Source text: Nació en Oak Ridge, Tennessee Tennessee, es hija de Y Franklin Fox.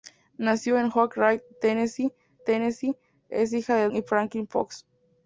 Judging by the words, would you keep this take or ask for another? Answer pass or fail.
pass